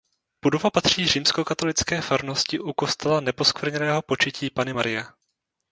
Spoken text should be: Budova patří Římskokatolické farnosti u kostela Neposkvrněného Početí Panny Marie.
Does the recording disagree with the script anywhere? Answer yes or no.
no